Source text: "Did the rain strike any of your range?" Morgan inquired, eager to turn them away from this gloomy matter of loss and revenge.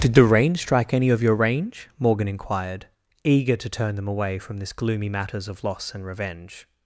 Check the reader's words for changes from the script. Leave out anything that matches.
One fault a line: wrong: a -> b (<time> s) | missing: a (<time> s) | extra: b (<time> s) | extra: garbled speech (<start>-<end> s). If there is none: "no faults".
wrong: matter -> matters (5.1 s)